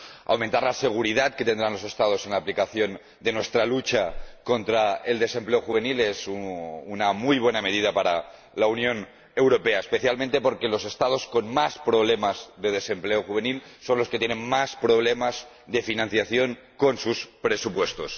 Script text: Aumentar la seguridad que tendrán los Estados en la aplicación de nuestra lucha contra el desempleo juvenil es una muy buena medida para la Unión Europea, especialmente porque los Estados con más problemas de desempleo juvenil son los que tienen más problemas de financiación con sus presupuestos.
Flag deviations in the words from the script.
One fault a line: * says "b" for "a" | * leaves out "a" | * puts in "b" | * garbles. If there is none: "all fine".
all fine